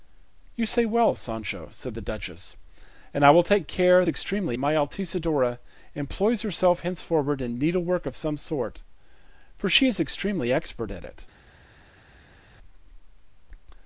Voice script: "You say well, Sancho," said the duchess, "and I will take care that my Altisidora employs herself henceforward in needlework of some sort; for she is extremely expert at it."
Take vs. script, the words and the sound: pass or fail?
fail